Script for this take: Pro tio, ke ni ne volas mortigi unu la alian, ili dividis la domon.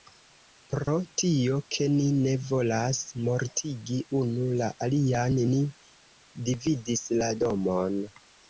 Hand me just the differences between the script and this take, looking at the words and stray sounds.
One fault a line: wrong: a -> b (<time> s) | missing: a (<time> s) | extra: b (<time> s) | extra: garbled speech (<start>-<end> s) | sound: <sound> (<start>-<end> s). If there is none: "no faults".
sound: dropout (0.8-0.9 s)
wrong: ili -> ni (5.5 s)